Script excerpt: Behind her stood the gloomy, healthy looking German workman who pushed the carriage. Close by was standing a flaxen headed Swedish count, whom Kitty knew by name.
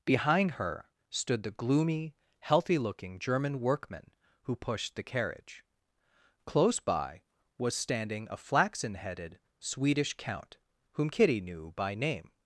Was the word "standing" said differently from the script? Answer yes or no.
no